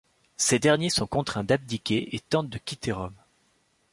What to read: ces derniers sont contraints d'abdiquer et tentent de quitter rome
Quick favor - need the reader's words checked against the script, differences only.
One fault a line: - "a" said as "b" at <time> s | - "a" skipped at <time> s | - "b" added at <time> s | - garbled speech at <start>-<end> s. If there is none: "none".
none